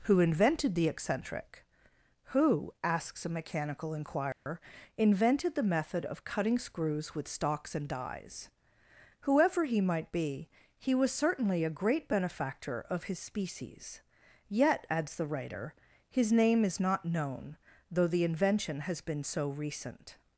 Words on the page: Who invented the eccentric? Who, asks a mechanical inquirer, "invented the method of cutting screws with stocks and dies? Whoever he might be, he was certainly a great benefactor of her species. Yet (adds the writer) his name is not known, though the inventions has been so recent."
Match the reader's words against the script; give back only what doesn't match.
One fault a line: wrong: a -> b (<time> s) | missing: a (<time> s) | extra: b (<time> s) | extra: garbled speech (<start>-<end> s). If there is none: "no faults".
wrong: her -> his (13.0 s)
wrong: inventions -> invention (18.2 s)